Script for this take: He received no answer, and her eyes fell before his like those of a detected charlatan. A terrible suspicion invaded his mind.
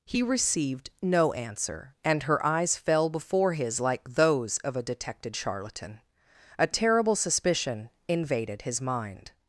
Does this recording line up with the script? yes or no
yes